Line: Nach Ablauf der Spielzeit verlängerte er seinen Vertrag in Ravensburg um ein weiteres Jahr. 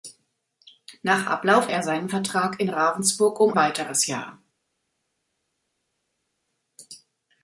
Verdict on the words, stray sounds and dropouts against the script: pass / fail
fail